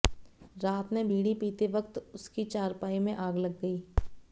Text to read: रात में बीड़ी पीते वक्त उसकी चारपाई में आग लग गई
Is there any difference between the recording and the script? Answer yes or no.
no